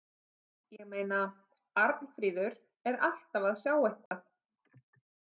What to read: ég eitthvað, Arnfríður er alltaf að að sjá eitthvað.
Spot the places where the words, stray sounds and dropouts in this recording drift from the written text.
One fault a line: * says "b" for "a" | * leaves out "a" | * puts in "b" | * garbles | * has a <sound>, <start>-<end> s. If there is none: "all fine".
* says "meina" for "eitthvað"
* leaves out "að"
* has a dropout, 4.1-4.1 s